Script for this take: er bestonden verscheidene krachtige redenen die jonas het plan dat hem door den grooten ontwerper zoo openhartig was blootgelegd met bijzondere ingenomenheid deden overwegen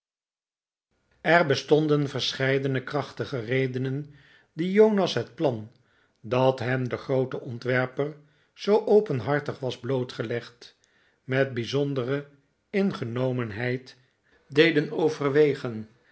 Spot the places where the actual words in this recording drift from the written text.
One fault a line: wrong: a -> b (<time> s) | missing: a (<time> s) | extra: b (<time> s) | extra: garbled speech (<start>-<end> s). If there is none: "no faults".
missing: door (6.9 s)